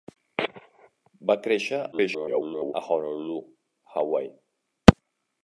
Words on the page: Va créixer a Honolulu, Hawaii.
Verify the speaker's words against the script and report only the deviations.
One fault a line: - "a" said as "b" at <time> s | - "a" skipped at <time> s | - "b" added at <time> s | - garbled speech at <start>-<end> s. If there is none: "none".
- garbled speech at 1.9-2.7 s